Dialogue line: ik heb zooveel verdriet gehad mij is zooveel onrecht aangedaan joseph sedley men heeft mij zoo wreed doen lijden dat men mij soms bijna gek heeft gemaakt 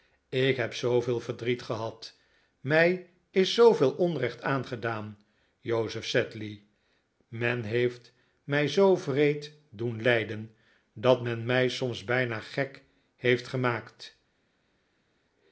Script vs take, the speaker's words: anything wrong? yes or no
no